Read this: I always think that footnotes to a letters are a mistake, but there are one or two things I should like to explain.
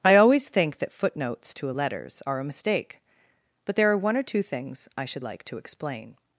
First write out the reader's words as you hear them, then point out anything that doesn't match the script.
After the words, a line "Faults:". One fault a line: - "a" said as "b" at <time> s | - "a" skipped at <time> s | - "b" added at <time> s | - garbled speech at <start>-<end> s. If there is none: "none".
I always think that footnotes to a letters are a mistake, but there are one or two things I should like to explain.
Faults:
none